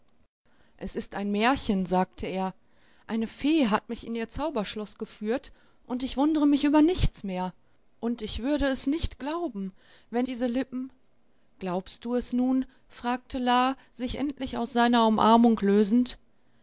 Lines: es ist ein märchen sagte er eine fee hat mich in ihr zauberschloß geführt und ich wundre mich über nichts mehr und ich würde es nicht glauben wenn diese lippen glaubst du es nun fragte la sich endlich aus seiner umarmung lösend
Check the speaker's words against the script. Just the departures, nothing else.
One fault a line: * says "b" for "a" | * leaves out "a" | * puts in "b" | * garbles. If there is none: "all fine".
all fine